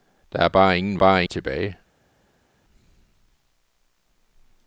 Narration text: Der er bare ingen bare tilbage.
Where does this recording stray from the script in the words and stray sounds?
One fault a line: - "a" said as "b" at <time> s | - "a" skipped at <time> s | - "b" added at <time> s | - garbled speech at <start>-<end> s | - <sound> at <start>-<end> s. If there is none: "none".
none